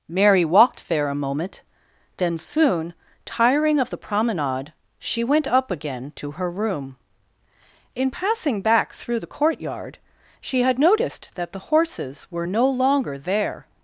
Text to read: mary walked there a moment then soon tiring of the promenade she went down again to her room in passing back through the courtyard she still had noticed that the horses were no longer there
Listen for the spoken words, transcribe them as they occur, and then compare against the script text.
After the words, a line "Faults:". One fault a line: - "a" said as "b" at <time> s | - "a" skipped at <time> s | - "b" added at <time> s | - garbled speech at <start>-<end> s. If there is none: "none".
mary walked there a moment then soon tiring of the promenade she went up again to her room in passing back through the courtyard she had noticed that the horses were no longer there
Faults:
- "down" said as "up" at 5.5 s
- "still" skipped at 10.6 s